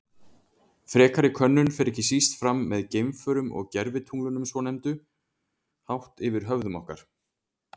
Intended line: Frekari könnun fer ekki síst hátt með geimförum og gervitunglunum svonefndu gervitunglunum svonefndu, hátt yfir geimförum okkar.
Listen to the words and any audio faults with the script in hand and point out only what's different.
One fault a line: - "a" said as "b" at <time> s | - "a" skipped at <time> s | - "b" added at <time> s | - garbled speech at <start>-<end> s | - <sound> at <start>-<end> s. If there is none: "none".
- "hátt" said as "fram" at 2.4 s
- "gervitunglunum svonefndu" skipped at 5.0 s
- "geimförum" said as "höfðum" at 6.5 s